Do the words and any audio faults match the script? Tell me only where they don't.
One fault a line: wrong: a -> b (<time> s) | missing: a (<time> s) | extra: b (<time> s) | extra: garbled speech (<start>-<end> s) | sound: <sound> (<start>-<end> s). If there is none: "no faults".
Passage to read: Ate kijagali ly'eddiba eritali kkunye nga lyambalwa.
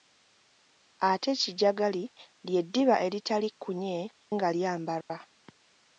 sound: dropout (5.0-5.1 s)